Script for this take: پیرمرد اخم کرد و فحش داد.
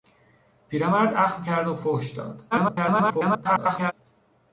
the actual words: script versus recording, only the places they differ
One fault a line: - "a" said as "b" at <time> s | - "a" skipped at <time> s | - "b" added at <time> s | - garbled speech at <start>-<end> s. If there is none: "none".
- garbled speech at 2.5-3.9 s